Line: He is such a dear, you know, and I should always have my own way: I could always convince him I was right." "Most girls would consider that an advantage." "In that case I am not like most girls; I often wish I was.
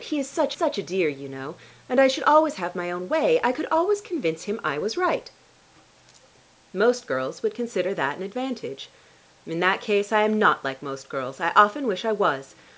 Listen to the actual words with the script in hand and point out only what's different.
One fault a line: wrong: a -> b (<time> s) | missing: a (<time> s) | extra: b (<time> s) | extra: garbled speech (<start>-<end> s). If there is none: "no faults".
extra: such (0.5 s)